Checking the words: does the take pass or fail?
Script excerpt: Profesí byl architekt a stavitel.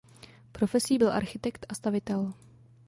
pass